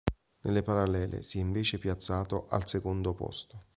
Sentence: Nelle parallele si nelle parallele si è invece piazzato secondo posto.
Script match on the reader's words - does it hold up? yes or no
no